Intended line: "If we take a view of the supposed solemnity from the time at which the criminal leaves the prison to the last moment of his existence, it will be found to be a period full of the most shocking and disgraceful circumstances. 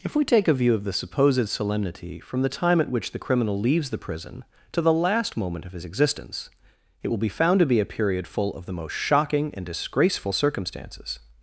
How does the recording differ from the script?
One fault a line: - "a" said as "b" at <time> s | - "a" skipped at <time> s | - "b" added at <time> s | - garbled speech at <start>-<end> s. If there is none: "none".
none